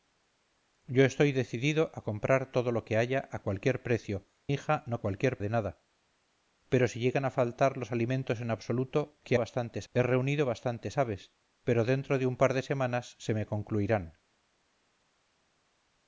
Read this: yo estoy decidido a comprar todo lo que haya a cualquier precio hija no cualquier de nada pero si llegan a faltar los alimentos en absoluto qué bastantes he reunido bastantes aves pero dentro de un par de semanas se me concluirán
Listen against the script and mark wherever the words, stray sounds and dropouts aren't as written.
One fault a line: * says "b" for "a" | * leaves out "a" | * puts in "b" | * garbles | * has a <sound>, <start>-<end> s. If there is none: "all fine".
all fine